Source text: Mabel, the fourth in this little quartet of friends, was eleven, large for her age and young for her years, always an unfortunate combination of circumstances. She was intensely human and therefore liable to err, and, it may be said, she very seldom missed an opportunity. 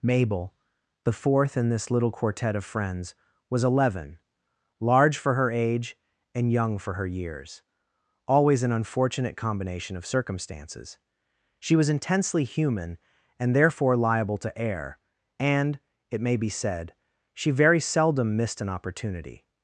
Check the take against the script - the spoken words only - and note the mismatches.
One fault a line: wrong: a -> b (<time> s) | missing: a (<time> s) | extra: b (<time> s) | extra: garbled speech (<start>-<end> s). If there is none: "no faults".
no faults